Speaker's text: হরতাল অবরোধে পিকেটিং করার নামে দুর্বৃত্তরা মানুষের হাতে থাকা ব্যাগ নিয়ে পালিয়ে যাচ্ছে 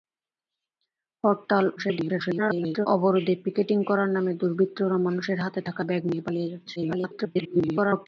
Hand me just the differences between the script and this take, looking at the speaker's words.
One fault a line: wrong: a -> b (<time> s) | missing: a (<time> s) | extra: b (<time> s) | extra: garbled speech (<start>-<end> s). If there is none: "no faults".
extra: garbled speech (1.8-2.9 s)
extra: garbled speech (6.8-8.1 s)